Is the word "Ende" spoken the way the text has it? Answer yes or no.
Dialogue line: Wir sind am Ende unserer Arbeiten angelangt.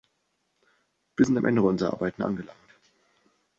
yes